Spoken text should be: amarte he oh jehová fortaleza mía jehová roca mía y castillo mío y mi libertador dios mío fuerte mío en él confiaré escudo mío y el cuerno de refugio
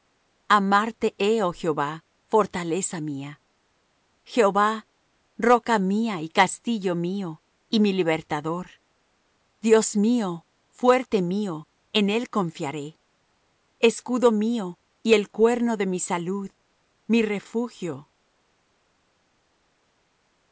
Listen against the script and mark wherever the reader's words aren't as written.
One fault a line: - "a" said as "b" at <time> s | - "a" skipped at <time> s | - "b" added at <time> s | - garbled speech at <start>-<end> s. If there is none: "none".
- "mi salud mi" added at 15.9 s